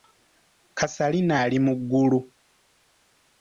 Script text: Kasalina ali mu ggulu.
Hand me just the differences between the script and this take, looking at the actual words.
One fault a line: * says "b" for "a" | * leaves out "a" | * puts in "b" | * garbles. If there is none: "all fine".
all fine